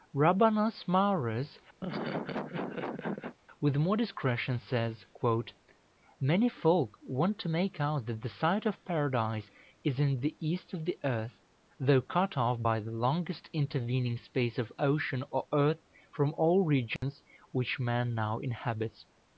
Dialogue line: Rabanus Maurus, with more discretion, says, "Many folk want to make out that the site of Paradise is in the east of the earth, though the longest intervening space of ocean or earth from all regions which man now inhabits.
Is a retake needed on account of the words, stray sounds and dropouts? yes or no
yes